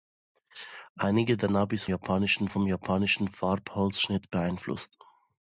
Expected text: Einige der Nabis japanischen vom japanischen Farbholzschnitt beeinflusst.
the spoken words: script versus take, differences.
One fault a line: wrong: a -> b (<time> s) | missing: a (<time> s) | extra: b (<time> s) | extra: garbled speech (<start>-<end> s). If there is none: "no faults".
no faults